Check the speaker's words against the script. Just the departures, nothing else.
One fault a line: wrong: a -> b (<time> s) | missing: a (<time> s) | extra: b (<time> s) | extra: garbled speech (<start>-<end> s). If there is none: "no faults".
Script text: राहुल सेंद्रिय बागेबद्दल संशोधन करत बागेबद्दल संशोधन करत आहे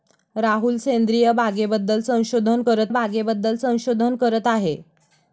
no faults